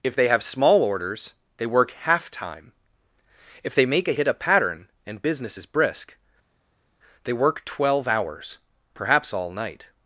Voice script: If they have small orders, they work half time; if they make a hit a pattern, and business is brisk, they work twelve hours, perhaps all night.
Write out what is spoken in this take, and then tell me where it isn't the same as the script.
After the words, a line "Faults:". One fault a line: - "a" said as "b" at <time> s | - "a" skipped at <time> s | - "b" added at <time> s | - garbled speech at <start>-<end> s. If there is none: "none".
If they have small orders, they work half time; if they make a hit a pattern, and business is brisk, they work twelve hours, perhaps all night.
Faults:
none